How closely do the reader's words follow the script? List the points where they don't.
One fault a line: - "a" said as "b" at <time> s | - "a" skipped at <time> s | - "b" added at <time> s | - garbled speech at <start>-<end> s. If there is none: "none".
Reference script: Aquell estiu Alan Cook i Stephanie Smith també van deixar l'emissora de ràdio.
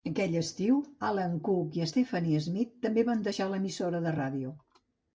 none